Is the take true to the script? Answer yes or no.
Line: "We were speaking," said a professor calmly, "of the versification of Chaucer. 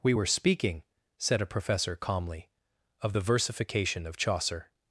yes